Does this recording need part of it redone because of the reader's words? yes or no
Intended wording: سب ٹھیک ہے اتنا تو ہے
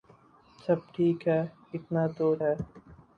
no